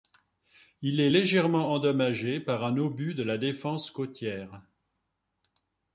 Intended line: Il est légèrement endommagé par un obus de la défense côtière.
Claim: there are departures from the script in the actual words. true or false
false